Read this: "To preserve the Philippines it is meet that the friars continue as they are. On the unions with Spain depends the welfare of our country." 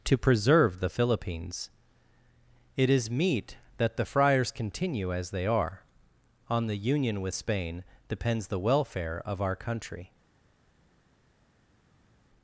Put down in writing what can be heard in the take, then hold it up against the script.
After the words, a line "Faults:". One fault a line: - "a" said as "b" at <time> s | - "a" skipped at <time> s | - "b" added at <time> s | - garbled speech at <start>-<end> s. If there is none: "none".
"To preserve the Philippines it is meet that the friars continue as they are. On the union with Spain depends the welfare of our country."
Faults:
- "unions" said as "union" at 6.8 s